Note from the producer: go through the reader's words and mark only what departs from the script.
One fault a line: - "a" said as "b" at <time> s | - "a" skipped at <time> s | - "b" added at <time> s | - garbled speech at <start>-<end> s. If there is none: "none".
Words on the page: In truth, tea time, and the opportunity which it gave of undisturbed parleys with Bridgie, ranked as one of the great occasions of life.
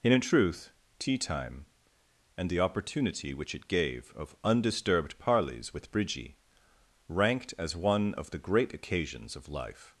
- "and" added at 0.0 s